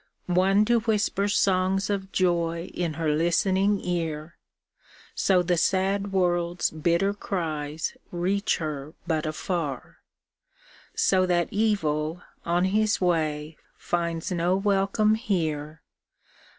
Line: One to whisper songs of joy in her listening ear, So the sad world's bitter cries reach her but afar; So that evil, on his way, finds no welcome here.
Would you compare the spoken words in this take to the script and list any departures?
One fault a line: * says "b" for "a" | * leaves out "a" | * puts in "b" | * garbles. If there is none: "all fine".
all fine